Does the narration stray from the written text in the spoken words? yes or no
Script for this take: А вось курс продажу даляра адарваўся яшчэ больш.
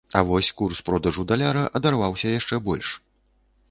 no